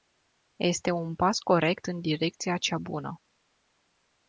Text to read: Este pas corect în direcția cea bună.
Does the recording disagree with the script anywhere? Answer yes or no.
yes